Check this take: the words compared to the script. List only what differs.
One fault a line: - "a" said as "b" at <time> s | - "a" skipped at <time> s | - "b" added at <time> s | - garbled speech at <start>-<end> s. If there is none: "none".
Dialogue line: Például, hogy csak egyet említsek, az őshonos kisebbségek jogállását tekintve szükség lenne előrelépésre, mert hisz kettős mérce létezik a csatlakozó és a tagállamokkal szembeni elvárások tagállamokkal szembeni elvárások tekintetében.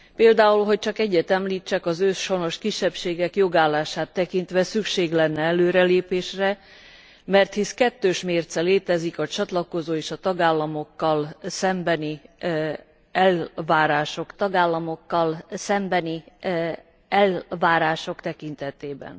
none